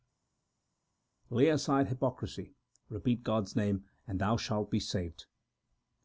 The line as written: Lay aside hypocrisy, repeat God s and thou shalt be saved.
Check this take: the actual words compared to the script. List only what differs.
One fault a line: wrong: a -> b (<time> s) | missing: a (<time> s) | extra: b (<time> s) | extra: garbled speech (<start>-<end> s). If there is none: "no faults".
extra: name (3.6 s)